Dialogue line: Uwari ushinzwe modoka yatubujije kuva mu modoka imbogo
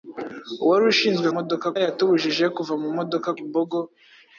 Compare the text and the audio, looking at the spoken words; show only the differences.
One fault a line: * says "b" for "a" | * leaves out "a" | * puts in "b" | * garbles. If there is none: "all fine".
all fine